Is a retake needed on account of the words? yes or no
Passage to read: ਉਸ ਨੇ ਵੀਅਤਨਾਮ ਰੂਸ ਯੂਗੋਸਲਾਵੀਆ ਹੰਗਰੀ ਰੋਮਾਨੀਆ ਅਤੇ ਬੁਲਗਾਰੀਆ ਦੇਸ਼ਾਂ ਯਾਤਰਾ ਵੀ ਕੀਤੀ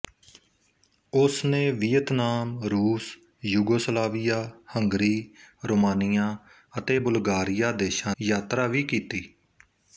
no